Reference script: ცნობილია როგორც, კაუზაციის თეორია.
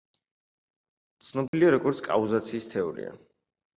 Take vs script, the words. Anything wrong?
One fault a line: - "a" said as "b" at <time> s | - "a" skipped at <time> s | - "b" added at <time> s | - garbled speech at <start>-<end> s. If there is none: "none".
none